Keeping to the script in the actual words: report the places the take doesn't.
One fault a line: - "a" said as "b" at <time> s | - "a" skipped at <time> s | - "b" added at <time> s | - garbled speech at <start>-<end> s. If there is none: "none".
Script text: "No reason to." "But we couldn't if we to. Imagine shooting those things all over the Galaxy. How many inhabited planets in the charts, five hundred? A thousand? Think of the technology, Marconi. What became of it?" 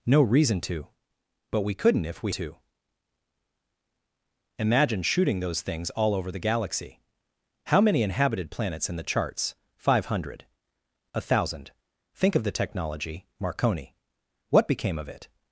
none